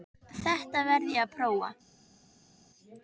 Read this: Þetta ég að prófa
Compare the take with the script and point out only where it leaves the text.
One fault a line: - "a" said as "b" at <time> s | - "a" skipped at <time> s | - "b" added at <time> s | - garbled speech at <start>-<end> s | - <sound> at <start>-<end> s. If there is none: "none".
- "verð" added at 0.9 s